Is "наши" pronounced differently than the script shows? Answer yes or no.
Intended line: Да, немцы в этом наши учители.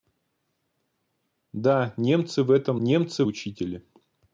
yes